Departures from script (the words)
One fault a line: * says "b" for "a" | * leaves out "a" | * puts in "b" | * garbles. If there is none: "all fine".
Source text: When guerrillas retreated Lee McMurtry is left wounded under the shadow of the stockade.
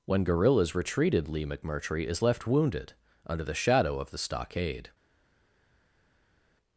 all fine